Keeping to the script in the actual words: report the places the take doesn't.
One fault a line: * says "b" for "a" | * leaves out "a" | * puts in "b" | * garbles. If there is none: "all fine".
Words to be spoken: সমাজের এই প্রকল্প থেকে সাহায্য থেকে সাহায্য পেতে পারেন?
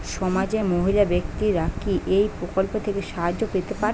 * puts in "মহিলা ব্যাক্তিরা কি"
* leaves out "থেকে সাহায্য"